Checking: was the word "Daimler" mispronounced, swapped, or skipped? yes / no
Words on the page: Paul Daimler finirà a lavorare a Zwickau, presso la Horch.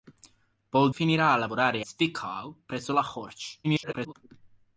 yes